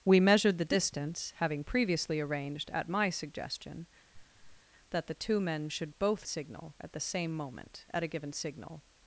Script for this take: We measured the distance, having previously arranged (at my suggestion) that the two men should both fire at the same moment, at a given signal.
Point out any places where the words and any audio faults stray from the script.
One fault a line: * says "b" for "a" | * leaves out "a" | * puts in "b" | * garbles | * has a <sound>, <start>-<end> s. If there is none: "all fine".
* has a laugh, 4.1-4.7 s
* says "signal" for "fire"